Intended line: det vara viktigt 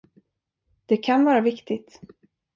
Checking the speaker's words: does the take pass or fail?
fail